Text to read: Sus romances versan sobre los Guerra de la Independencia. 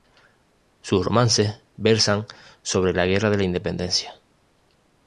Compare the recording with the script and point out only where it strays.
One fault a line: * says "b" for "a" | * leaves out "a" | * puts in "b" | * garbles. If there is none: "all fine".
* says "la" for "los"